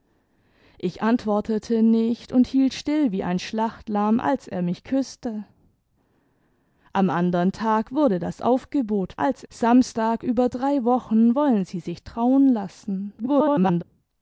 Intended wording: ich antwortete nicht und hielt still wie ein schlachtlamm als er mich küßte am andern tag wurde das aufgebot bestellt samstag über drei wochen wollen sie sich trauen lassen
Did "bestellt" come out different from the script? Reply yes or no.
yes